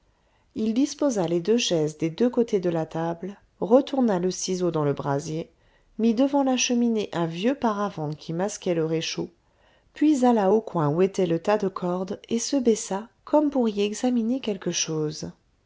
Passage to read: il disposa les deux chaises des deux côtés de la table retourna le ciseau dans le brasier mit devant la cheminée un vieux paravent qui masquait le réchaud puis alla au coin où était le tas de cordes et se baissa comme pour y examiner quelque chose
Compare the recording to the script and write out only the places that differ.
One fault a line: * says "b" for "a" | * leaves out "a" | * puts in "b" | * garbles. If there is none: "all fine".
all fine